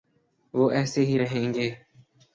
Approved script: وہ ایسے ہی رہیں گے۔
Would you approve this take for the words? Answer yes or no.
yes